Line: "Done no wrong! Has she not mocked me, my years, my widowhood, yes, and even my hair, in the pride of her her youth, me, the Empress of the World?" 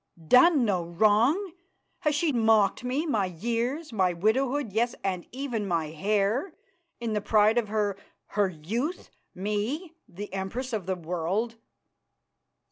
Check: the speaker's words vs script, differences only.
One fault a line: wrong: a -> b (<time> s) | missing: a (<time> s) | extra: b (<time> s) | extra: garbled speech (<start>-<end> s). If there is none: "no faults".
missing: not (2.3 s)